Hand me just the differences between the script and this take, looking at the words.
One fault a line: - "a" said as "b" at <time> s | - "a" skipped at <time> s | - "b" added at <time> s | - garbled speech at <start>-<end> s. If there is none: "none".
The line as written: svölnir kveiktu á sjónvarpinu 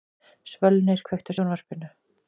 none